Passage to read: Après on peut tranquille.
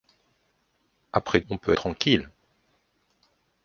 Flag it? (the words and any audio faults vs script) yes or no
no